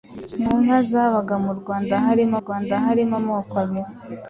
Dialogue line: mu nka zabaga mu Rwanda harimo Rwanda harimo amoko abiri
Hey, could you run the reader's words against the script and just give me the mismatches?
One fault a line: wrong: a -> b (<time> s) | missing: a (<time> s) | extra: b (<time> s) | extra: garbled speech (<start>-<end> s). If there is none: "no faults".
no faults